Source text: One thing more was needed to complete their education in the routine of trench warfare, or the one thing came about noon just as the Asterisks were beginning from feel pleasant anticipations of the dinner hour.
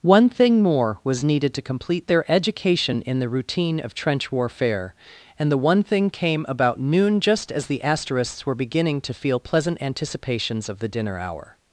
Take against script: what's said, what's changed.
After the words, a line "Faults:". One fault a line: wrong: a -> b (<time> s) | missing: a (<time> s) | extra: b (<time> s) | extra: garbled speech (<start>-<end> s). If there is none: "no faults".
One thing more was needed to complete their education in the routine of trench warfare, and the one thing came about noon just as the Asterisks were beginning to feel pleasant anticipations of the dinner hour.
Faults:
wrong: or -> and (5.4 s)
wrong: from -> to (9.0 s)